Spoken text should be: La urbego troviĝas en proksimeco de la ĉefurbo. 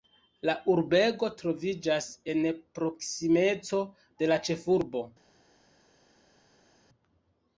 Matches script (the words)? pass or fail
pass